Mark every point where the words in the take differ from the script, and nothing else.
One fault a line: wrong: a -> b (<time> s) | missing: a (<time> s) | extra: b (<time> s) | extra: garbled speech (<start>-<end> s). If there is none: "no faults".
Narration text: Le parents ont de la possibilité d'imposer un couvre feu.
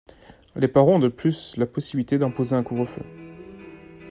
wrong: Le -> Les (0.6 s)
extra: plus (1.1 s)